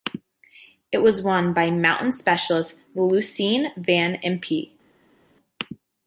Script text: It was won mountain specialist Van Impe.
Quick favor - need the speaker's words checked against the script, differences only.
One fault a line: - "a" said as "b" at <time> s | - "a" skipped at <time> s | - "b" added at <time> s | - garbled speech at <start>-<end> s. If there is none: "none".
- "by" added at 1.5 s
- "Lucien" added at 2.9 s